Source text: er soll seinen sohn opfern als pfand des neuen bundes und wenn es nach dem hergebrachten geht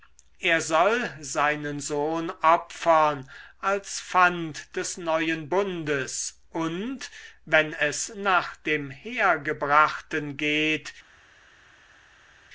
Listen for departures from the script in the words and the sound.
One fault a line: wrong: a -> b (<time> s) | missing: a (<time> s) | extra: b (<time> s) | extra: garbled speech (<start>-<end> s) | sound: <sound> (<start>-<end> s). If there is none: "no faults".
no faults